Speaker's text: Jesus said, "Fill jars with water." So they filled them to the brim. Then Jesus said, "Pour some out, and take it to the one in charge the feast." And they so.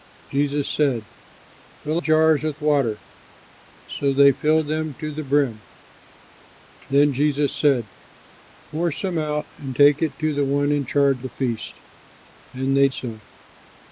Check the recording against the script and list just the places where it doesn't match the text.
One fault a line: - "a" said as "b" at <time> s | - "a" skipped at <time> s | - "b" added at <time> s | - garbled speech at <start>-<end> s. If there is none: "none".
none